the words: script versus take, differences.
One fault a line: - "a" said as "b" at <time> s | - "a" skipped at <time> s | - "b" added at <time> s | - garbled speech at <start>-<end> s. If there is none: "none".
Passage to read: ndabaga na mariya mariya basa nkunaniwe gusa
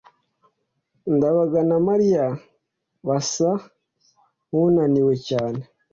- "mariya" skipped at 2.2 s
- "gusa" said as "cyane" at 5.3 s